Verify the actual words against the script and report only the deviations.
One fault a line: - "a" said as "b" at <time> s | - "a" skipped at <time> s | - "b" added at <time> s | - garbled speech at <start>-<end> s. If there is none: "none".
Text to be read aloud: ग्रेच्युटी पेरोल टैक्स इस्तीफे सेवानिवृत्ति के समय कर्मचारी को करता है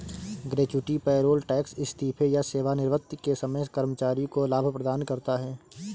- "या" added at 2.3 s
- "लाभ प्रदान" added at 4.5 s